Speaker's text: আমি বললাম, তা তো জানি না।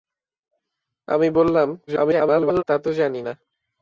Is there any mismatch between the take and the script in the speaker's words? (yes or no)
yes